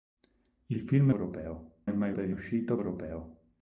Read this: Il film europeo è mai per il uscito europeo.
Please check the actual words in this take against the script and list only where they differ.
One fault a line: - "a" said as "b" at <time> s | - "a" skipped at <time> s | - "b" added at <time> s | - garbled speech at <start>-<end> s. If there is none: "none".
none